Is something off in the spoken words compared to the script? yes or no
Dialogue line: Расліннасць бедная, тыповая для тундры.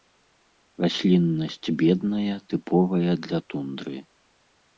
no